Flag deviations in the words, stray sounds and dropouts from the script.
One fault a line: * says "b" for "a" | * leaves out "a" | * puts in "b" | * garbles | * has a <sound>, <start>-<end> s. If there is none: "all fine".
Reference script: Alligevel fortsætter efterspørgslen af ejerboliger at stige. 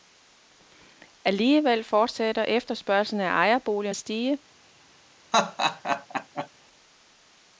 * has a laugh, 5.3-6.5 s